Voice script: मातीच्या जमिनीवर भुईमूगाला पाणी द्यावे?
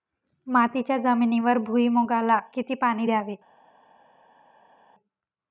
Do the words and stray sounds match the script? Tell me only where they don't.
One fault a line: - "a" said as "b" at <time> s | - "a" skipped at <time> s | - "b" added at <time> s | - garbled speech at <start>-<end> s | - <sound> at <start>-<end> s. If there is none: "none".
- "किती" added at 2.5 s